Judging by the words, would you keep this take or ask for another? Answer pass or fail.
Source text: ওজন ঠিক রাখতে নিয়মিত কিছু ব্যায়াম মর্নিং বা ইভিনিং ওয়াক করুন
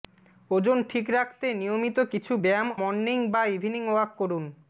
pass